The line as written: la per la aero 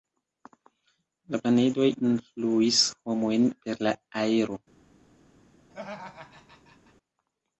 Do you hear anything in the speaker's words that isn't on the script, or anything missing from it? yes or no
yes